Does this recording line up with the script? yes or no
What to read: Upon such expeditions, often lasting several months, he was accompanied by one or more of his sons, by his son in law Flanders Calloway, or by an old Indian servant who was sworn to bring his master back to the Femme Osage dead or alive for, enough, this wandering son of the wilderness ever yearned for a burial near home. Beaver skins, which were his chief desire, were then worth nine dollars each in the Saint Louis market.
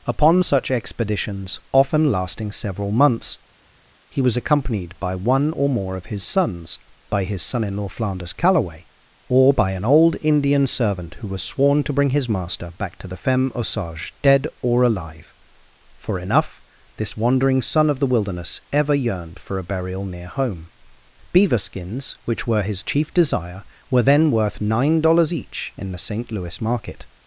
yes